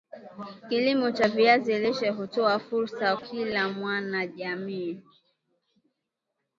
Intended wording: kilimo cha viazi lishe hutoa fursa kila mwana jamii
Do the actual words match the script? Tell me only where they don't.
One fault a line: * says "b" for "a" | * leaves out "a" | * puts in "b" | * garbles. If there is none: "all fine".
all fine